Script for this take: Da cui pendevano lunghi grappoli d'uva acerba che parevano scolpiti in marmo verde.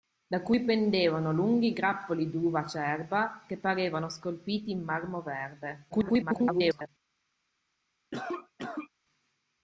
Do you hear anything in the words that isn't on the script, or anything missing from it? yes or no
yes